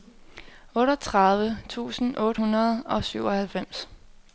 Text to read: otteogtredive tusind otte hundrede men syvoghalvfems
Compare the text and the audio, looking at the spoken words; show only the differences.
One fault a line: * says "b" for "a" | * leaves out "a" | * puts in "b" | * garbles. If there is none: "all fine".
* says "og" for "men"